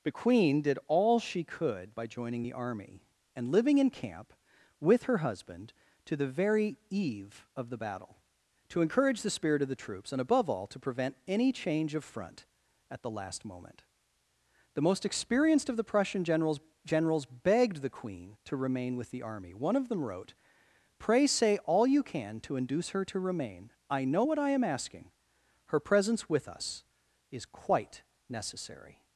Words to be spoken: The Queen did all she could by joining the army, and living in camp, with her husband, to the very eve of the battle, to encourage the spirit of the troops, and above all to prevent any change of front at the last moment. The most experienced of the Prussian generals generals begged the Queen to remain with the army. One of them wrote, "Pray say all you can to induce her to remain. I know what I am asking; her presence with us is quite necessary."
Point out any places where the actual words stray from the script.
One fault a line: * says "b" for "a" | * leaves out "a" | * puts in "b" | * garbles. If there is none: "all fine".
all fine